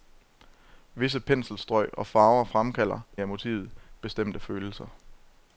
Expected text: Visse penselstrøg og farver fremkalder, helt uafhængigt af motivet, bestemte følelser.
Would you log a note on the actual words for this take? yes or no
yes